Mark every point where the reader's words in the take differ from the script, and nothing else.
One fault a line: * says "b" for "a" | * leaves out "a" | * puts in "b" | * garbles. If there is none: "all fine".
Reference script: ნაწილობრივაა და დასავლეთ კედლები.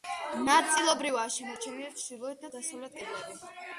* puts in "შემორჩენილი ჩრდილოეთ"